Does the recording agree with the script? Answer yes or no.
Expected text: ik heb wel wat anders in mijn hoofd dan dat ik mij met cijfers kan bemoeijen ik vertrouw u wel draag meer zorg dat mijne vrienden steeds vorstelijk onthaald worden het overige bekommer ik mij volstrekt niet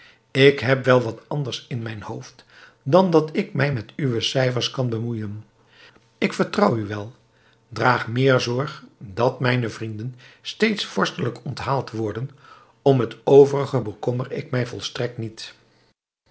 no